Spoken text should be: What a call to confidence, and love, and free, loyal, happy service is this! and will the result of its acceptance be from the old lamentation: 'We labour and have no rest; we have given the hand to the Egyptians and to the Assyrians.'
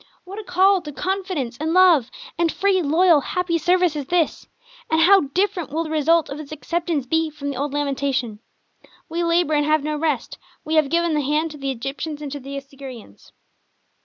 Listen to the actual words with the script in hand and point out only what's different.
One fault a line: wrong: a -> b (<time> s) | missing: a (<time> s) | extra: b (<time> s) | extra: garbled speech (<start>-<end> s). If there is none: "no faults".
extra: how different (5.0 s)